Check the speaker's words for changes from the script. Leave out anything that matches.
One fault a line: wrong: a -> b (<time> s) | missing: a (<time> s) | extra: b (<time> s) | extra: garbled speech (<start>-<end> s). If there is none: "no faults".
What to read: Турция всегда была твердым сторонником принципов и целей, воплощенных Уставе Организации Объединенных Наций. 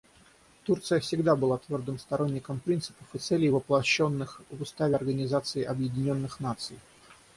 extra: в (4.5 s)